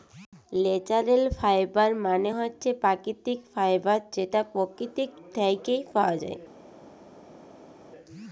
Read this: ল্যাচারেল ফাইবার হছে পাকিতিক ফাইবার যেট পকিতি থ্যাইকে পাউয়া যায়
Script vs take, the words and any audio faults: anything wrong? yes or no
yes